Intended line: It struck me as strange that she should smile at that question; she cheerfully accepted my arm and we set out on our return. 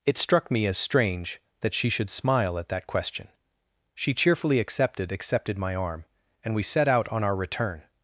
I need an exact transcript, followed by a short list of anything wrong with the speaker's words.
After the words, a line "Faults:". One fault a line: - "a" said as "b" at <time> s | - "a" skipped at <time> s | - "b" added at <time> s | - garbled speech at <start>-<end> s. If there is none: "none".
It struck me as strange that she should smile at that question; she cheerfully accepted accepted my arm and we set out on our return.
Faults:
- "accepted" added at 5.1 s